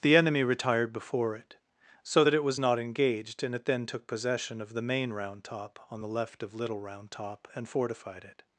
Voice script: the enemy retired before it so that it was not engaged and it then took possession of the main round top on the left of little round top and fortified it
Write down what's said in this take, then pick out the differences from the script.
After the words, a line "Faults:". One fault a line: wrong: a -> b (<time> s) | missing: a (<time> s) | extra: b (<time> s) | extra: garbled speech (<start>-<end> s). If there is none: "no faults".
the enemy retired before it so that it was not engaged and it then took possession of the main round top on the left of little round top and fortified it
Faults:
no faults